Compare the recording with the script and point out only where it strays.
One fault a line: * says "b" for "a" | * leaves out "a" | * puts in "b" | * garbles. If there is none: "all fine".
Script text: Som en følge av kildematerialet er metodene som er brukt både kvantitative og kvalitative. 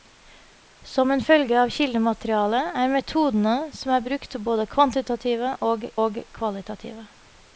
* puts in "og"